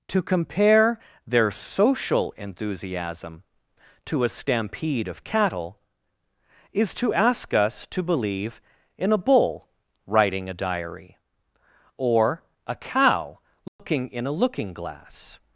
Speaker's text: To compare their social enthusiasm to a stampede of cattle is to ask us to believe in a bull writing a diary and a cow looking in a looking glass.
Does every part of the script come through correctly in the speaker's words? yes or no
no